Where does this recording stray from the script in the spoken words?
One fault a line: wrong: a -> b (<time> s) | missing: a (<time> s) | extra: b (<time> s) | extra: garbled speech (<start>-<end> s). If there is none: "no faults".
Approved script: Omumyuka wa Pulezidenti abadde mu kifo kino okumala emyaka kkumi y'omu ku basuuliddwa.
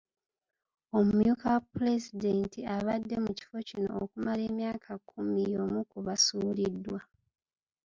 no faults